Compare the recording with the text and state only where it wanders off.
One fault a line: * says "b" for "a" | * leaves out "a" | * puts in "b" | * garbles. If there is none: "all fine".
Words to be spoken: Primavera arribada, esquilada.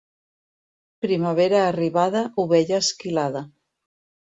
* puts in "ovella"